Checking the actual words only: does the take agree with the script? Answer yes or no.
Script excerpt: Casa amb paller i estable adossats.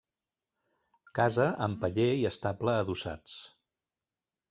yes